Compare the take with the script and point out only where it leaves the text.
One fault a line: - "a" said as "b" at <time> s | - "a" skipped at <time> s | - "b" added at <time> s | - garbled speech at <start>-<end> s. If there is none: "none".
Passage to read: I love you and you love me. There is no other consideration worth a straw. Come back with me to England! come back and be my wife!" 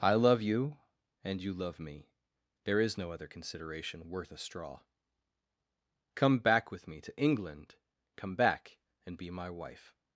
none